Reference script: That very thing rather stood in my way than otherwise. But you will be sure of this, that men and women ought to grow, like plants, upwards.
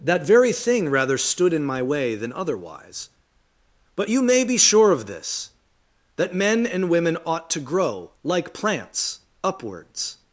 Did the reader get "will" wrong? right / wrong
wrong